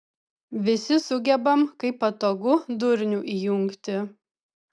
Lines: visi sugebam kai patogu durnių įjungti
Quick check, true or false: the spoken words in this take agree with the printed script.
true